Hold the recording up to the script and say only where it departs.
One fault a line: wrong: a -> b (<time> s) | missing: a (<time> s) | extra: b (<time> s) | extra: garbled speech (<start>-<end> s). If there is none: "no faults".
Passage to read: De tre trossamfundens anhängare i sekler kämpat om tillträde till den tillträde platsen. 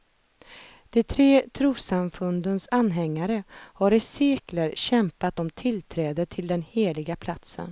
extra: har (3.5 s)
wrong: tillträde -> heliga (6.6 s)